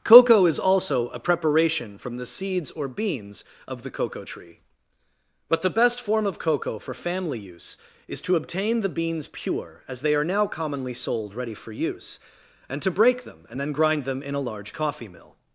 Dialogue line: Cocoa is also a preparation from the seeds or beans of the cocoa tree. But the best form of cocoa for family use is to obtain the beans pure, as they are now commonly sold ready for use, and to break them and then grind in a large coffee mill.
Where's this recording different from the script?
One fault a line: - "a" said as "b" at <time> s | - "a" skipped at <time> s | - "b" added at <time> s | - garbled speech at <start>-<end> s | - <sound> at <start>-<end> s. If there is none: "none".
- "them" added at 14.0 s